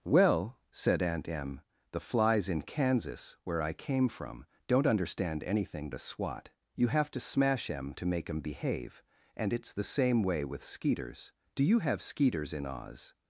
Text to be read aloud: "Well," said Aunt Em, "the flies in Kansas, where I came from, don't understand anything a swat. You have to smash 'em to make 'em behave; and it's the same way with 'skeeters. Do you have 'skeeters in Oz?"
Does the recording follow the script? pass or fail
pass